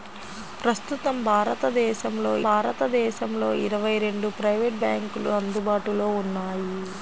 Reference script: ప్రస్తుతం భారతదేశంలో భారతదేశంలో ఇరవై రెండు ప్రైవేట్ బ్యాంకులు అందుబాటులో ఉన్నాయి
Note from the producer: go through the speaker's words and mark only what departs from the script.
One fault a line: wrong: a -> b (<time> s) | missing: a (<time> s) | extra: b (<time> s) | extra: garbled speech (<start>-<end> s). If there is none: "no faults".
no faults